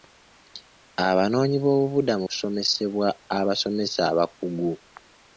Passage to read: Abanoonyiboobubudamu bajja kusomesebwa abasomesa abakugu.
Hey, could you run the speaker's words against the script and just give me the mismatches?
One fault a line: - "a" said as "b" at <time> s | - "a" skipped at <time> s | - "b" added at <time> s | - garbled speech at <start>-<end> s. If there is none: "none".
- "bajja" skipped at 2.2 s